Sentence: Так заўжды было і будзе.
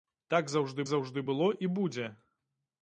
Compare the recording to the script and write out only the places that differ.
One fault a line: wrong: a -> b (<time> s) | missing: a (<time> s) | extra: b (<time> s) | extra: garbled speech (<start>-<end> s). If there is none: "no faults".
extra: заўжды (0.9 s)